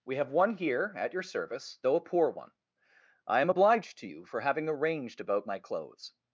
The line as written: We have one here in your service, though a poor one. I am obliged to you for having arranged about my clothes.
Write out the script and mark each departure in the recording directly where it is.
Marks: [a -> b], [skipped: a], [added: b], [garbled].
We have one here [in -> at] your service, though a poor one. I am obliged to you for having arranged about my clothes.